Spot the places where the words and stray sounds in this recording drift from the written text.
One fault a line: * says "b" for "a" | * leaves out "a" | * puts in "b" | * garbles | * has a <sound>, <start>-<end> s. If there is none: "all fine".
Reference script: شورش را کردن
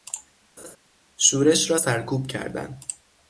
* has a laugh, 0.6-0.8 s
* puts in "سرکوب"